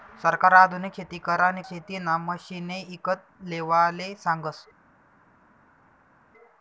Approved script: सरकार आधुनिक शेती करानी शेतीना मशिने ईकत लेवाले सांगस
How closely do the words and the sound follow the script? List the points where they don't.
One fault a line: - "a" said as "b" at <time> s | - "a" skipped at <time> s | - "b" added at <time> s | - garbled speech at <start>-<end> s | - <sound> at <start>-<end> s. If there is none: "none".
none